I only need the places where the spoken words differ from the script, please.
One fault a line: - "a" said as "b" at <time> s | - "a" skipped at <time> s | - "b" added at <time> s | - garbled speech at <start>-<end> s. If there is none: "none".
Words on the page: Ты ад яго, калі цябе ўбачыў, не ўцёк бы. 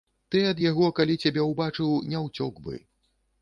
none